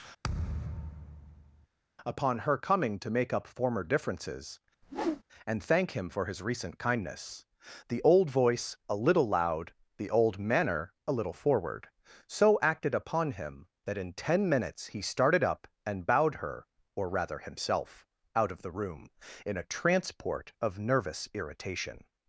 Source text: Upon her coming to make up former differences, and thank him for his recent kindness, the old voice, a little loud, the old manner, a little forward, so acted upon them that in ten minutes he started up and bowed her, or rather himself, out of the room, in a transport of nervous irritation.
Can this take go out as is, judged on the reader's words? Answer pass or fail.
fail